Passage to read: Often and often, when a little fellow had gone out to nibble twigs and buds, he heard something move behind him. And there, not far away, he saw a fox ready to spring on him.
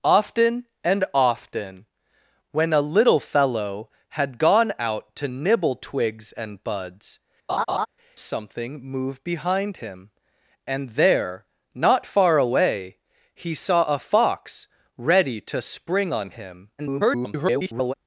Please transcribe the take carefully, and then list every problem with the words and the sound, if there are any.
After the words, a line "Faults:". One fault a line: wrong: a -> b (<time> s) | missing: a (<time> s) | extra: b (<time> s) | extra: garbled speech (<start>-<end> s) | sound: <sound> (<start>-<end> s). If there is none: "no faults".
Often and often, when a little fellow had gone out to nibble twigs and buds, something move behind him. And there, not far away, he saw a fox ready to spring on him. [garbled]
Faults:
missing: he heard (7.2 s)
sound: laugh (7.5-7.9 s)
extra: garbled speech (16.8-17.9 s)